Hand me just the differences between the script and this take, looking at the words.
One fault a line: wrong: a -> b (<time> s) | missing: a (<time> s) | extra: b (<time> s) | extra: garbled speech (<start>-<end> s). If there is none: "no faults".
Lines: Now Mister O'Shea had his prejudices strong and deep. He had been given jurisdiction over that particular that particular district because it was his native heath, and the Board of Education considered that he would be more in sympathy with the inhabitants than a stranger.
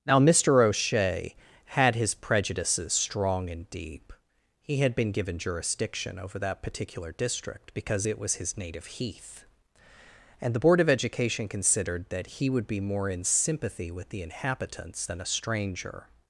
missing: that particular (7.1 s)